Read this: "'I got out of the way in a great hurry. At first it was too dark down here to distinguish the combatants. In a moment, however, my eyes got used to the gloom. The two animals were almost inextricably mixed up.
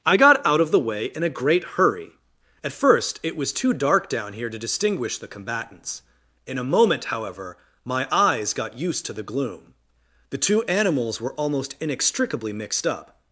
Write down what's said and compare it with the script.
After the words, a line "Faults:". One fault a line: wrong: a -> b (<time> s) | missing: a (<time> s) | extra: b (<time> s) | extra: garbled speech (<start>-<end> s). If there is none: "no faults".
"'I got out of the way in a great hurry. At first it was too dark down here to distinguish the combatants. In a moment, however, my eyes got used to the gloom. The two animals were almost inextricably mixed up.
Faults:
no faults